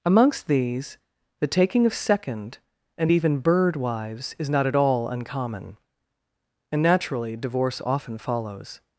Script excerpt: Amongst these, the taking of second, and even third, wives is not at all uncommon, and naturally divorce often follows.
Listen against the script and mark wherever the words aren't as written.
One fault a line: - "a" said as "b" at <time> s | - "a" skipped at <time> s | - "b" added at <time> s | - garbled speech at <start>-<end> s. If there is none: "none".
- "third" said as "bird" at 3.4 s